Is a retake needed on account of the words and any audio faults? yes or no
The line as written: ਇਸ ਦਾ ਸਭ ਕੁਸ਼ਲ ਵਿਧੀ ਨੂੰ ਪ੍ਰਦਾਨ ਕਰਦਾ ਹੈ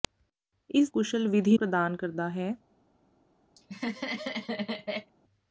yes